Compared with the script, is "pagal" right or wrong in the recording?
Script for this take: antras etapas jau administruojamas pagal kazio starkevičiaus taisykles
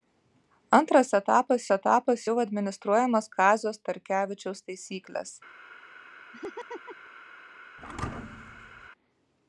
wrong